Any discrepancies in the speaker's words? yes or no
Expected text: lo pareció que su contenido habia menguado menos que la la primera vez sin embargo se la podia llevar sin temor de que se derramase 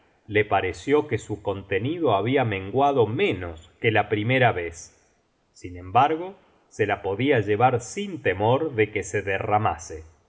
yes